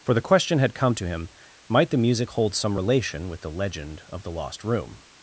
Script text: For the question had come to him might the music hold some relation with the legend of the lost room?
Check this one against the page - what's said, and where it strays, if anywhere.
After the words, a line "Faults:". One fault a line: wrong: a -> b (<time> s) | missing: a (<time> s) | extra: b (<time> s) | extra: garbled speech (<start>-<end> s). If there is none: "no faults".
For the question had come to him might the music hold some relation with the legend of the lost room?
Faults:
no faults